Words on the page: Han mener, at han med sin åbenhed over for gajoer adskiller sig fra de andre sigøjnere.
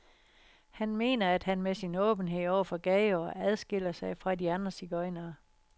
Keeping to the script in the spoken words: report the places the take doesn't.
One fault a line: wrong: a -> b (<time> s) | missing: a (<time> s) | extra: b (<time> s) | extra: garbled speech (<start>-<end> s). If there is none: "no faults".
no faults